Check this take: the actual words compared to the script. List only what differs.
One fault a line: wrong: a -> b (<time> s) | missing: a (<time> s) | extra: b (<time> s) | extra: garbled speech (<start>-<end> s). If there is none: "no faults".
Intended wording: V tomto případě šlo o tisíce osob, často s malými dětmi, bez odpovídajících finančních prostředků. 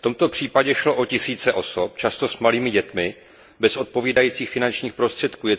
no faults